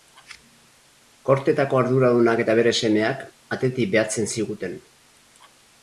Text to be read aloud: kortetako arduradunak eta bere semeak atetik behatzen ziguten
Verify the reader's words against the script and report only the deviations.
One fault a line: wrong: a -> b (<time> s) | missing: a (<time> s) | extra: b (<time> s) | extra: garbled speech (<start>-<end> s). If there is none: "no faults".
no faults